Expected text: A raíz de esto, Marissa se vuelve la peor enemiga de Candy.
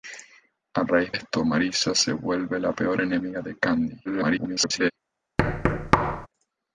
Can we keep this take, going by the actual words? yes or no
no